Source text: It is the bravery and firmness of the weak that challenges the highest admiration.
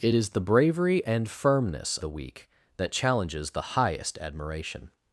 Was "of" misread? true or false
true